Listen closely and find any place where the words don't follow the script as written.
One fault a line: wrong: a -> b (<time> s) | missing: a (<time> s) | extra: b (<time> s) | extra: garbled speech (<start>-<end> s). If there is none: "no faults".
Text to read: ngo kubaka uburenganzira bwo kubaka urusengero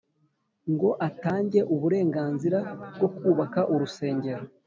wrong: kubaka -> atange (1.1 s)